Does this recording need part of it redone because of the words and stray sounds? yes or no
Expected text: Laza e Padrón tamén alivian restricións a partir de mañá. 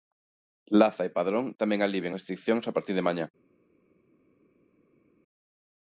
no